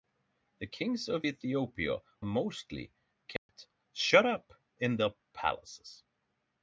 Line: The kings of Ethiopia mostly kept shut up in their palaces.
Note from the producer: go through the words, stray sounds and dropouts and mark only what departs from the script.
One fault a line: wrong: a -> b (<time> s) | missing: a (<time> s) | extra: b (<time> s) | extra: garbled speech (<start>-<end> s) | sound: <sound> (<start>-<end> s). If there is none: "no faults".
sound: dropout (3.4-3.5 s)